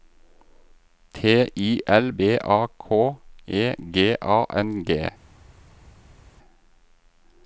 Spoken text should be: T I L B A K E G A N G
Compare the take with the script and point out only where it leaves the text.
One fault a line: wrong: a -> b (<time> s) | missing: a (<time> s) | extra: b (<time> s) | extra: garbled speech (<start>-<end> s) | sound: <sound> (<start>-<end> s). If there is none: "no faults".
no faults